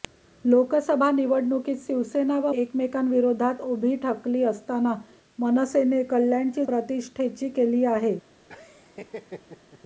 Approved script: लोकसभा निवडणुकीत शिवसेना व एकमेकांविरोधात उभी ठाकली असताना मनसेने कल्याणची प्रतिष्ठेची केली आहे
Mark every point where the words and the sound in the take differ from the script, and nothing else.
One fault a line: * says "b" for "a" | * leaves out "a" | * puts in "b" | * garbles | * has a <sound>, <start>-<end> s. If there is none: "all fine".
* has a laugh, 8.5-9.8 s